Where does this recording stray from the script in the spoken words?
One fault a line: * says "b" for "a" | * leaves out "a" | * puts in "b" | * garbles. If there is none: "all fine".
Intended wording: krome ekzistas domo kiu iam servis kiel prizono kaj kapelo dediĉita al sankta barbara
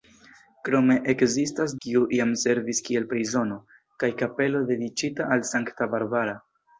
* leaves out "domo"